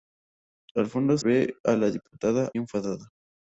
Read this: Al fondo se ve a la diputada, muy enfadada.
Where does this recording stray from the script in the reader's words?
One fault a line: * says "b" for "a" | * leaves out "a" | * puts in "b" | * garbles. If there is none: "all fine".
* leaves out "se"
* leaves out "muy"